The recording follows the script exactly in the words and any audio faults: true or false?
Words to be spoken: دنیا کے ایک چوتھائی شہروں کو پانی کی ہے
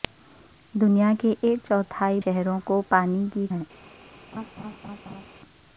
false